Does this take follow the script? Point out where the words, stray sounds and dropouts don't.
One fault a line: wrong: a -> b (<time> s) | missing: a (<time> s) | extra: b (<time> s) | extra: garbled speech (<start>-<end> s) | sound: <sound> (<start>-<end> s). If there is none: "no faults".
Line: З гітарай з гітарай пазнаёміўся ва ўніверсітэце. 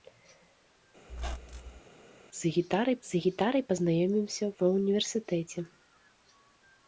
sound: squeak (1.1-1.8 s)